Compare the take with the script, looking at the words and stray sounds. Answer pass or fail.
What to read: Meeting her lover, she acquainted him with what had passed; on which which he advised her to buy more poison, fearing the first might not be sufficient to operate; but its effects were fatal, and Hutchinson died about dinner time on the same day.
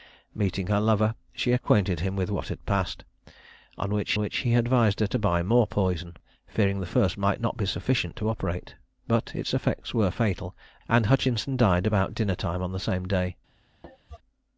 fail